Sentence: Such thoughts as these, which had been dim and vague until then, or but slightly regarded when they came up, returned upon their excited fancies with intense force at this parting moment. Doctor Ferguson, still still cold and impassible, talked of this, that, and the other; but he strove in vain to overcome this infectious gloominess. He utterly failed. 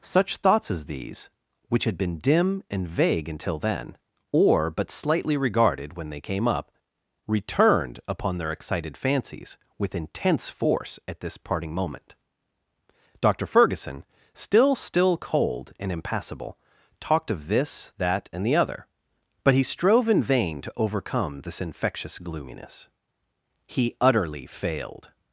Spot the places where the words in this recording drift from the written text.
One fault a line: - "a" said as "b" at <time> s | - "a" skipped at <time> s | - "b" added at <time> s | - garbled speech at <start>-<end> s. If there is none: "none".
none